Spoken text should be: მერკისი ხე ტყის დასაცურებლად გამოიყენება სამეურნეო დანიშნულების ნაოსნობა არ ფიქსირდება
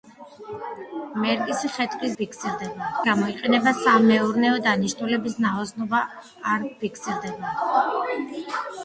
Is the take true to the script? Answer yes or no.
no